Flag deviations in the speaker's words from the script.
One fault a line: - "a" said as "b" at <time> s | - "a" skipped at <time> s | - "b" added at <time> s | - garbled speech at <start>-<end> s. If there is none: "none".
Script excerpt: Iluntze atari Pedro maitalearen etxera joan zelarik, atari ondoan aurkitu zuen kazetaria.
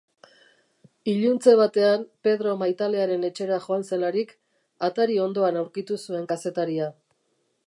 - "atari" said as "batean" at 1.6 s